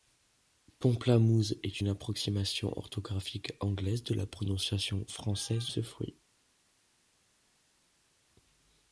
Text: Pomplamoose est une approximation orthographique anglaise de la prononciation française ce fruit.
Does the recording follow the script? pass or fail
pass